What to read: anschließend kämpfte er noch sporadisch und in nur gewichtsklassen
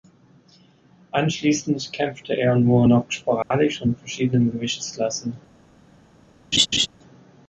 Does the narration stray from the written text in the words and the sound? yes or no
yes